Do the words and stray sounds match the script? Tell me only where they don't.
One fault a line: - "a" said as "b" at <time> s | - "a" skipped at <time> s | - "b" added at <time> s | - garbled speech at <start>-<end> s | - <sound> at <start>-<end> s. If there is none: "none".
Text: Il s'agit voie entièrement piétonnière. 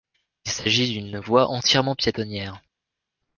- "d'une" added at 0.9 s